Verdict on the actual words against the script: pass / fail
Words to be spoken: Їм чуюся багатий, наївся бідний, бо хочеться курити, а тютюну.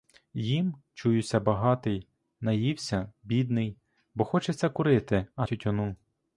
pass